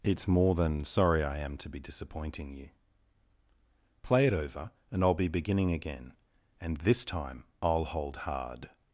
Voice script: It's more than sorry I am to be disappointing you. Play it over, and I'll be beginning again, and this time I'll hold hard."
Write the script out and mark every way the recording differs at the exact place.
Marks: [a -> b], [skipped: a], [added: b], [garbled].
It's more than sorry I am to be disappointing you. Play it over, and I'll be beginning again, and this time I'll hold hard."